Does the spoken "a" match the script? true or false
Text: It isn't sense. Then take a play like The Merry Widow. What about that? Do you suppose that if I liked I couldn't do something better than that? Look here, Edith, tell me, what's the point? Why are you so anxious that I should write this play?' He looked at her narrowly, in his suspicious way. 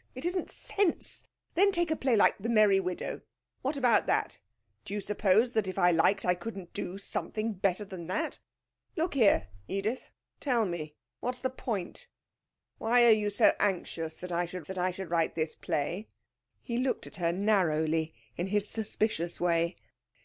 true